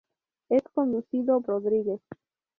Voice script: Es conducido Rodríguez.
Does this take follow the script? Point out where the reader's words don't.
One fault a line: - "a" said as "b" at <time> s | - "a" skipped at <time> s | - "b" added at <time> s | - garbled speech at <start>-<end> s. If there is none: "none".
none